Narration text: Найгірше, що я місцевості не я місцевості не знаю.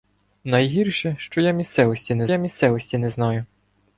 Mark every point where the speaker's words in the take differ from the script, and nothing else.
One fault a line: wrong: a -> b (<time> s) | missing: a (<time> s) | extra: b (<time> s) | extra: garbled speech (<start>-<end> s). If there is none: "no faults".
no faults